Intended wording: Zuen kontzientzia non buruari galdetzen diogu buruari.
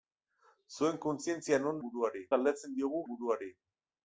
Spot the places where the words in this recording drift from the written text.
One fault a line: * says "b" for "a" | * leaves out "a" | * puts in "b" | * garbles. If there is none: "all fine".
all fine